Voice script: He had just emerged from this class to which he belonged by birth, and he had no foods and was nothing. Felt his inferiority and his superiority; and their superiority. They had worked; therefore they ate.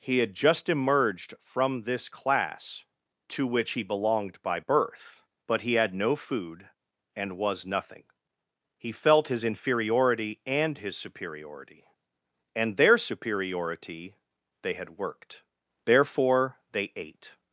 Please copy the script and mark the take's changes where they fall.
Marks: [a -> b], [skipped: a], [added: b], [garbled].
He had just emerged from this class to which he belonged by birth, [and -> but] he had no [foods -> food] and was nothing. [added: He] Felt his inferiority and his superiority; and their superiority. They had worked; therefore they ate.